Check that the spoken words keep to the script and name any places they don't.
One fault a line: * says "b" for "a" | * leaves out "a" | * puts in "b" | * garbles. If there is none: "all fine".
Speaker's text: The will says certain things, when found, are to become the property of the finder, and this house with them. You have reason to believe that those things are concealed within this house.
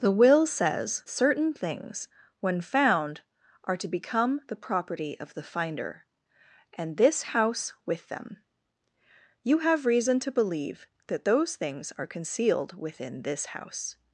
all fine